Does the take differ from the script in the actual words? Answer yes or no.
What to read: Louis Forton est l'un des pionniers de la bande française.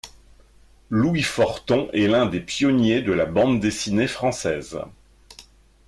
yes